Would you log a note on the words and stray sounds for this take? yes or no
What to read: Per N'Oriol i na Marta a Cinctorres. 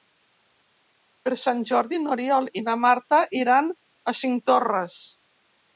yes